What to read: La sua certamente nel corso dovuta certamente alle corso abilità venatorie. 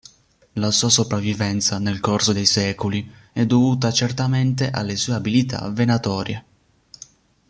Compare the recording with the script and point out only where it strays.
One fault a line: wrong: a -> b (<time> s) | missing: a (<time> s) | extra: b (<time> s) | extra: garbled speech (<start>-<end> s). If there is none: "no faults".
wrong: certamente -> sopravvivenza (0.9 s)
extra: dei secoli è (2.3 s)
wrong: corso -> sue (4.9 s)